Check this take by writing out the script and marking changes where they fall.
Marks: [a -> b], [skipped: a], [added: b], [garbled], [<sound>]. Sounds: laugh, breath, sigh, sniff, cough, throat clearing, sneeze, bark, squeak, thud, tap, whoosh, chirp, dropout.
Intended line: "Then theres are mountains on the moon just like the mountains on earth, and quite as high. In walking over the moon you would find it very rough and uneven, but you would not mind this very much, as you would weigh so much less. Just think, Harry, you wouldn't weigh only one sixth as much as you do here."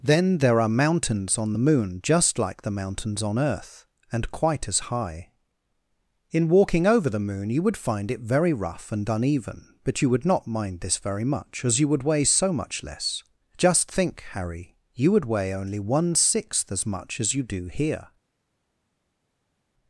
"Then [theres -> there] are mountains on the moon just like the mountains on earth, and quite as high. In walking over the moon you would find it very rough and uneven, but you would not mind this very much, as you would weigh so much less. Just think, Harry, you [wouldn't -> would] weigh only one sixth as much as you do here."